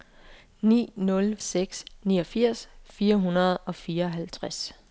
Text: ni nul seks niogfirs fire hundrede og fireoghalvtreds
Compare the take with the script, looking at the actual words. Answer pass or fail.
pass